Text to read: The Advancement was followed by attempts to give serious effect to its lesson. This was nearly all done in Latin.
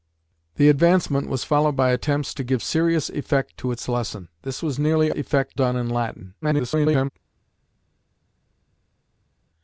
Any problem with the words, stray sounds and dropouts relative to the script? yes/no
yes